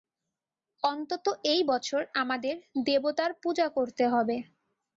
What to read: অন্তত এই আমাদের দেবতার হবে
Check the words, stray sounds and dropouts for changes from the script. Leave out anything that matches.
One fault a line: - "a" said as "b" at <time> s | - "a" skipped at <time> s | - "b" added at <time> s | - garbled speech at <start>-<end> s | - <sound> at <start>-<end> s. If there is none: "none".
- "বছর" added at 1.7 s
- "পূজা করতে" added at 3.4 s